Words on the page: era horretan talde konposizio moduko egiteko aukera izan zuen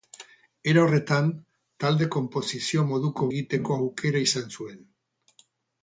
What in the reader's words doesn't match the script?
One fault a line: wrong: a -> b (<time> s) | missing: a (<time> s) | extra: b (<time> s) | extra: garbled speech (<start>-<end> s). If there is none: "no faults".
no faults